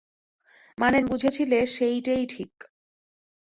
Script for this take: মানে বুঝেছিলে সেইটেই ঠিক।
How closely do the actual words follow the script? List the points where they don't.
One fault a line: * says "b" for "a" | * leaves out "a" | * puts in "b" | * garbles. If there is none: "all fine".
all fine